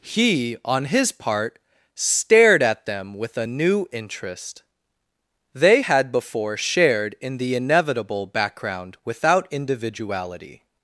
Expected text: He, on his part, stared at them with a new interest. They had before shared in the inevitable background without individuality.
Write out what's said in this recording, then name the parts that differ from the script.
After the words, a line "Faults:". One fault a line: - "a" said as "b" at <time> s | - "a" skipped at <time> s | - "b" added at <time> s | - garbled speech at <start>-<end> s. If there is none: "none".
He, on his part, stared at them with a new interest. They had before shared in the inevitable background without individuality.
Faults:
none